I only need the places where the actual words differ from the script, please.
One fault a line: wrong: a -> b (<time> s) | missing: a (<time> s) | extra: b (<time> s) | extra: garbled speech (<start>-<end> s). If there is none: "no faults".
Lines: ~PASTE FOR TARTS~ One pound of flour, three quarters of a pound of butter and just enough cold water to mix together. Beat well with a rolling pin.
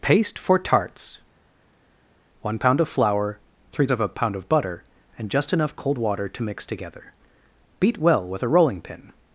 missing: quarters (3.9 s)